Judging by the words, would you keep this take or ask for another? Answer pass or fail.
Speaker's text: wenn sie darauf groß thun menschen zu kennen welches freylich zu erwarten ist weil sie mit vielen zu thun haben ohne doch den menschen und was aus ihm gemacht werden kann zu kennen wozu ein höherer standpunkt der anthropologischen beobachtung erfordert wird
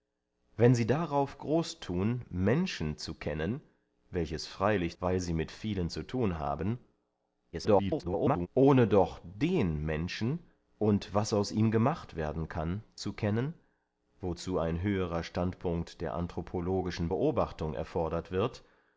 fail